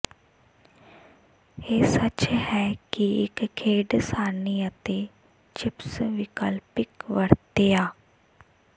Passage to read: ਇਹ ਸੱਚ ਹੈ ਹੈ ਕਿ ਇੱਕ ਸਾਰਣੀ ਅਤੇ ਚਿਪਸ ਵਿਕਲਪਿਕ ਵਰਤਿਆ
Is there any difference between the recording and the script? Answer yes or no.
yes